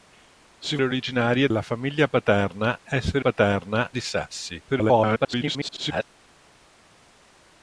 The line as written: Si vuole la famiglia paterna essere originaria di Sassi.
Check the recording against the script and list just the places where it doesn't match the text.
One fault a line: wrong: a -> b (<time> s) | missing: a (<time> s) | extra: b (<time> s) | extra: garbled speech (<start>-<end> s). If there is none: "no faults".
wrong: vuole -> originaria (0.8 s)
wrong: originaria -> paterna (3.2 s)
extra: garbled speech (4.7-6.0 s)